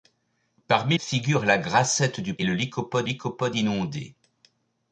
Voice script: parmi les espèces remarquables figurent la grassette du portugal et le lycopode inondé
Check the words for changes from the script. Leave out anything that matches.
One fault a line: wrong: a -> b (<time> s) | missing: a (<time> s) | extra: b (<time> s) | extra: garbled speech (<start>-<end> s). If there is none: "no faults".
missing: les espèces remarquables (1.0 s)
missing: portugal (2.3 s)
extra: lycopode (3.0 s)